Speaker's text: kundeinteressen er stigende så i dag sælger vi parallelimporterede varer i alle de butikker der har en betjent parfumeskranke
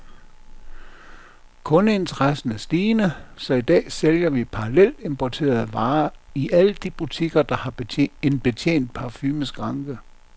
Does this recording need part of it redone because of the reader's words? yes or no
no